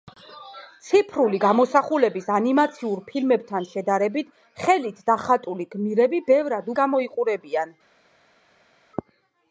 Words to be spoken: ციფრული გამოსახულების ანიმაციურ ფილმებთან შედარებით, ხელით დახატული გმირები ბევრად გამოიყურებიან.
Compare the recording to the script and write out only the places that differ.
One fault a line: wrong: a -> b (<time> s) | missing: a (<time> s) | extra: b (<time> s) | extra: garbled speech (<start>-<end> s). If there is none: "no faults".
no faults